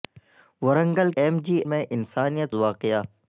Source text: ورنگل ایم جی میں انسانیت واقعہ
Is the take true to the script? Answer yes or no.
yes